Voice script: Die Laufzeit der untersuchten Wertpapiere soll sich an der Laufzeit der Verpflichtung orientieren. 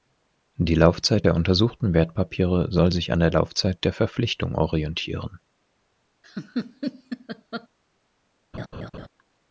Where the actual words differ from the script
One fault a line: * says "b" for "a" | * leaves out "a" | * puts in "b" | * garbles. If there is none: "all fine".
all fine